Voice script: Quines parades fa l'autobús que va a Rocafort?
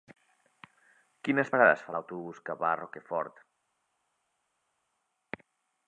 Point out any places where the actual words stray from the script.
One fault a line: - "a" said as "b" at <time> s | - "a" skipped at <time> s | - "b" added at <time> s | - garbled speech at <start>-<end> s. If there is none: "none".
none